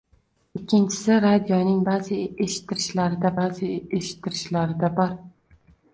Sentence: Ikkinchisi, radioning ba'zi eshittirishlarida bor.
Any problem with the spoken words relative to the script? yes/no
yes